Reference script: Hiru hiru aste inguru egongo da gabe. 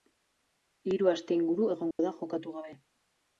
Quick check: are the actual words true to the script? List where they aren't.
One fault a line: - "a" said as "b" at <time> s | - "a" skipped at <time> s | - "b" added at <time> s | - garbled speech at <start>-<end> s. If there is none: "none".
- "hiru" skipped at 1.1 s
- "jokatu" added at 2.2 s